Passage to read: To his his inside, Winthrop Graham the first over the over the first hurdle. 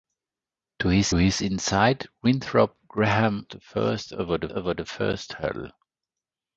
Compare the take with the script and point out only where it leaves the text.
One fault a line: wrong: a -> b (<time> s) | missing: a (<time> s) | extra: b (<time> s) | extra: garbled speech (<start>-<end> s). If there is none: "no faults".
no faults